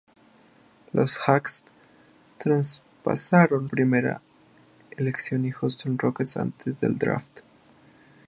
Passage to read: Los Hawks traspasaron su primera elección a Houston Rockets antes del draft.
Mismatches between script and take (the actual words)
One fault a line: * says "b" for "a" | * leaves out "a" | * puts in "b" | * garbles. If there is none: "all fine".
* leaves out "su"